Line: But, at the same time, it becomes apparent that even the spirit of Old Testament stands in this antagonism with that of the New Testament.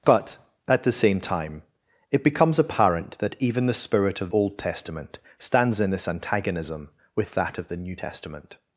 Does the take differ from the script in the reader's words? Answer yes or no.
no